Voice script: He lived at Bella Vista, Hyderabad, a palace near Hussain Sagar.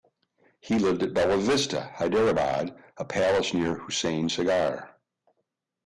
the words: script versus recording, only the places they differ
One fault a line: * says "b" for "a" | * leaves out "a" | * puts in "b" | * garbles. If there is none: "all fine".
all fine